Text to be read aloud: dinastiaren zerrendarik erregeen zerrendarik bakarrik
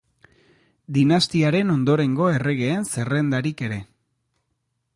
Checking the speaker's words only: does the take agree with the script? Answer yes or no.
no